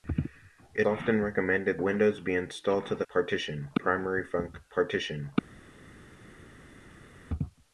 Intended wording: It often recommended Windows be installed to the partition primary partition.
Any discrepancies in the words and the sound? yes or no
no